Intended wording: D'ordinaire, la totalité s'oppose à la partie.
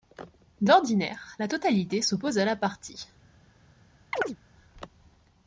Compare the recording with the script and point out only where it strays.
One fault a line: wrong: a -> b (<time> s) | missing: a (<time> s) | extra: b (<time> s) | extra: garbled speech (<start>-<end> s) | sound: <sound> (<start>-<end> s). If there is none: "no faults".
sound: chirp (4.1-4.4 s)